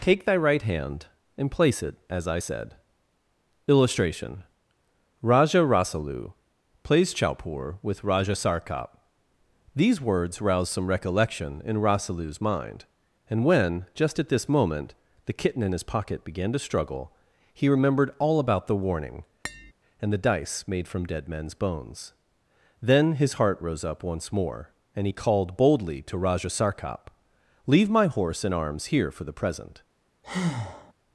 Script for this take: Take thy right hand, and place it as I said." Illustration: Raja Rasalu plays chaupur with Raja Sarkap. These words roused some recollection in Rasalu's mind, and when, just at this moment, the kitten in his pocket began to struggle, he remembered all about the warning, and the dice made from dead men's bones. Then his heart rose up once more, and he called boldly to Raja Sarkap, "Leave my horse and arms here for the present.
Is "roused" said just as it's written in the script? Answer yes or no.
no